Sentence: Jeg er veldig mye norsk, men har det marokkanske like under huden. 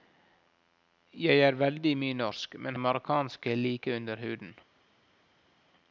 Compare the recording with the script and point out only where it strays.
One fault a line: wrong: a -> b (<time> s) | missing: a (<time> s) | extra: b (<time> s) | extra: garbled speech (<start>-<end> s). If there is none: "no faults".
missing: har (2.8 s)